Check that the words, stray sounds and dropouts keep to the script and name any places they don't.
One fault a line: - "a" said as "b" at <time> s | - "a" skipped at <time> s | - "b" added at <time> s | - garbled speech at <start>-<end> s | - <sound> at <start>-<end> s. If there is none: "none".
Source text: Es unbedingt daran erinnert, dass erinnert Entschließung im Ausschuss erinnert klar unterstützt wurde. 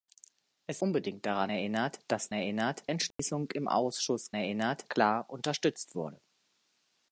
- dropout at 3.1-3.2 s